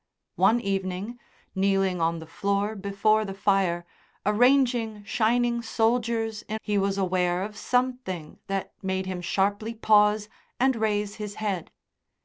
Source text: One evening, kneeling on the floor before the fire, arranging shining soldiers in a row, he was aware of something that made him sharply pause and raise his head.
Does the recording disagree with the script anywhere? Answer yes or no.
yes